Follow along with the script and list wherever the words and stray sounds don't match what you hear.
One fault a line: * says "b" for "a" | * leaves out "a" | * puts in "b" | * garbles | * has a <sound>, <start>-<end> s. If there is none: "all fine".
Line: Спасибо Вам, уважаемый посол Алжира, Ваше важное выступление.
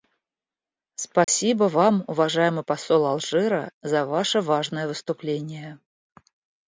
* has a dropout, 1.2-1.3 s
* puts in "за"